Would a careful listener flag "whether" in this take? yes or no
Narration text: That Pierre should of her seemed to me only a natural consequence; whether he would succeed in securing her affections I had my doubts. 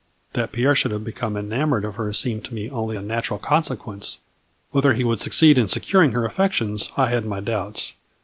no